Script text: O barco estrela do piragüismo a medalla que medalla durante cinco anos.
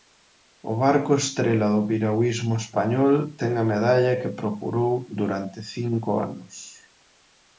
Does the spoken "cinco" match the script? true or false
true